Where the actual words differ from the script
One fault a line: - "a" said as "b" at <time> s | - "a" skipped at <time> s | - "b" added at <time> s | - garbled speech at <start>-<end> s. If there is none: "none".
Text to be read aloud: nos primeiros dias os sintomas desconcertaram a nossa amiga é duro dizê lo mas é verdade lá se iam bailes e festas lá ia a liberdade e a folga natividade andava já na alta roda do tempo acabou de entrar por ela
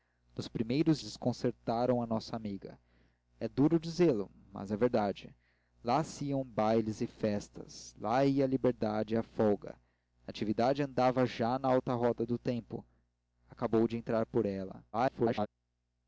- "dias os sintomas" skipped at 1.0 s
- garbled speech at 14.9-15.5 s